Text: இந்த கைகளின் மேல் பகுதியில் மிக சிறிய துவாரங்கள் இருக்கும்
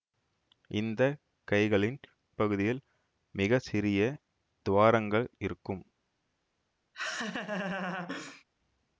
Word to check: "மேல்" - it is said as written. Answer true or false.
false